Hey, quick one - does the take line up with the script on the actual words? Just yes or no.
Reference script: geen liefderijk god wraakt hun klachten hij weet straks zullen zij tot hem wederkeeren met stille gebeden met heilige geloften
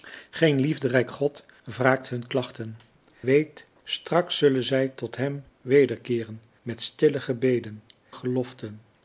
no